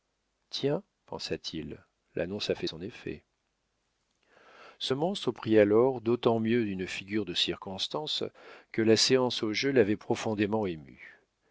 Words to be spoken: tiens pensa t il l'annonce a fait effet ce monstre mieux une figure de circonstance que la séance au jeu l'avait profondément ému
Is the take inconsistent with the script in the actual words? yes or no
yes